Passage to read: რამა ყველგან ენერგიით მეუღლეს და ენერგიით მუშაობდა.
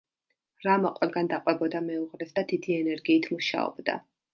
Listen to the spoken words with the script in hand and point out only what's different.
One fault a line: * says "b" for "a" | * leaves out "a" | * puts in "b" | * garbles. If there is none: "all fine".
* says "დაყვებოდა" for "ენერგიით"
* puts in "დიდი"